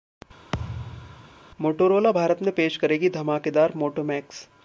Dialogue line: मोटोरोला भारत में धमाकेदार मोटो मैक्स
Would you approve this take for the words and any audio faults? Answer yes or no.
no